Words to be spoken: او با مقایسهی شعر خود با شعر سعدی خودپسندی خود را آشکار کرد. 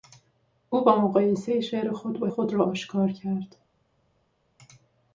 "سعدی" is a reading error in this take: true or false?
true